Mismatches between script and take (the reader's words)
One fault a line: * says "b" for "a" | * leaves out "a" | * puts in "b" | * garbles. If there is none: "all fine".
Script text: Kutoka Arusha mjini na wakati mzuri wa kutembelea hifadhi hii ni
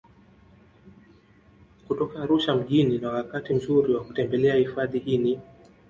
all fine